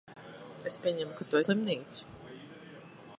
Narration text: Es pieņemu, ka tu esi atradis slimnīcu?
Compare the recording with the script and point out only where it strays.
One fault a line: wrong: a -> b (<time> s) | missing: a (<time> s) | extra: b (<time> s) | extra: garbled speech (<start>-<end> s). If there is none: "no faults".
missing: esi atradis (1.4 s)